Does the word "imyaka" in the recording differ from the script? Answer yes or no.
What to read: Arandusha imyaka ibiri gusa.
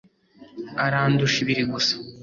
yes